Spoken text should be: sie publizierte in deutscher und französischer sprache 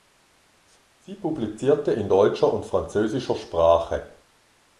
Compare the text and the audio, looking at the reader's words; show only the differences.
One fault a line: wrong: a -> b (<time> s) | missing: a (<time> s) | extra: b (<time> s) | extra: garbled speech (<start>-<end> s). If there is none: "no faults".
no faults